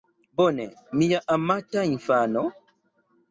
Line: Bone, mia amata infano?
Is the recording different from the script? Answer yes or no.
no